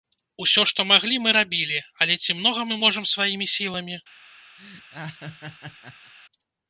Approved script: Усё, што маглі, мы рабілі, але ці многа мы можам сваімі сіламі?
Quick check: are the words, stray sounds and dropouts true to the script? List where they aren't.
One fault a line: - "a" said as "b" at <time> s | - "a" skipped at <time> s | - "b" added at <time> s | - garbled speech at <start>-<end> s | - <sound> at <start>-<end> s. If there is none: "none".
- laugh at 4.6-6.1 s